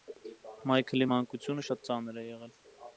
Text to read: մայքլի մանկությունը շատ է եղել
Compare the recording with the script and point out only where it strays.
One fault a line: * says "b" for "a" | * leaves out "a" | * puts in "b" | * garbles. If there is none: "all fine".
* puts in "ծանր"